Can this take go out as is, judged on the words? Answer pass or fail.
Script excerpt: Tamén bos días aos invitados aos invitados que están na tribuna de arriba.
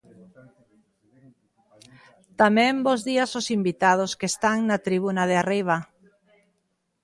fail